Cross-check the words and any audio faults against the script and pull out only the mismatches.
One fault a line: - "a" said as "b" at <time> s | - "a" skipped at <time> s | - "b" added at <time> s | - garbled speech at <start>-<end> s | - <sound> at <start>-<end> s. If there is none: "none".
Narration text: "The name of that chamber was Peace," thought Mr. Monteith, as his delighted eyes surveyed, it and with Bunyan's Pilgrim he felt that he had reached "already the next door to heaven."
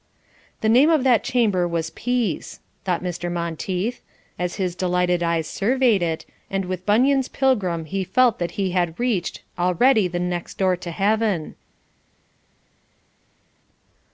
none